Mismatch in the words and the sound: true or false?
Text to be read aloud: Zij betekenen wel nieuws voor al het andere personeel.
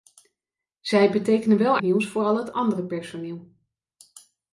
false